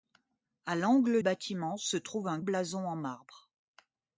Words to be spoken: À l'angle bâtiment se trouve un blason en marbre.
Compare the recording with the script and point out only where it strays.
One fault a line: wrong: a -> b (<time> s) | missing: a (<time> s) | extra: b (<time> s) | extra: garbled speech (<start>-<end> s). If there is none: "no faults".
no faults